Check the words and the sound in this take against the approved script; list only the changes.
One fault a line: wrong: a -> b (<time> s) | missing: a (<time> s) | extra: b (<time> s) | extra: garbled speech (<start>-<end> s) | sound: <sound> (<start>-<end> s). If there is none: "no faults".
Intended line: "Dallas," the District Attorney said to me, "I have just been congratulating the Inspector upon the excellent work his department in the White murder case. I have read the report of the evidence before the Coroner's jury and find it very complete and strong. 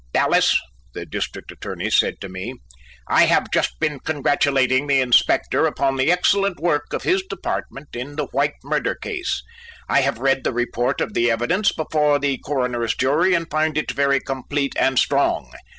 extra: of (6.9 s)